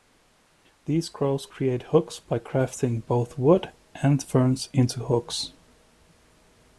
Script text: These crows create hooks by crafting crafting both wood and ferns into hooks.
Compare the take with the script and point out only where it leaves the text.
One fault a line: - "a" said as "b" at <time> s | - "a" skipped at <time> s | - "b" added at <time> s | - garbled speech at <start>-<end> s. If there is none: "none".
- "crafting" skipped at 3.0 s